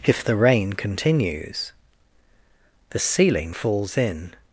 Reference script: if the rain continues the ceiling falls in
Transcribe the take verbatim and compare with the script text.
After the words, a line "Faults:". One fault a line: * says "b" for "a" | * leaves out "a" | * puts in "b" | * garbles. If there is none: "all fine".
if the rain continues the ceiling falls in
Faults:
all fine